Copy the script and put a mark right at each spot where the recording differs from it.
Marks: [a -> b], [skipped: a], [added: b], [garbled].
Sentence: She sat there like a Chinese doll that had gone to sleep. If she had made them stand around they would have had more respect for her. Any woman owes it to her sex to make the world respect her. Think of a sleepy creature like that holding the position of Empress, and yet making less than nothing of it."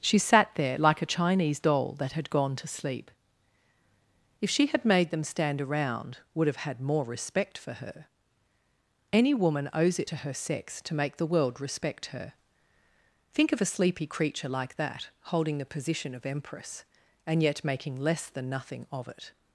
She sat there like a Chinese doll that had gone to sleep. If she had made them stand around [skipped: they] would have had more respect for her. Any woman owes it to her sex to make the world respect her. Think of a sleepy creature like that holding the position of Empress, and yet making less than nothing of it."